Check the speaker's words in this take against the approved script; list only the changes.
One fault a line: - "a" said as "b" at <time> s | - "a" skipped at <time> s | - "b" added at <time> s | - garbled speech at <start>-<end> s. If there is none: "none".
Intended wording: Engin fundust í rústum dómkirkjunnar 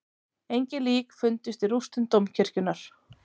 - "lík" added at 0.9 s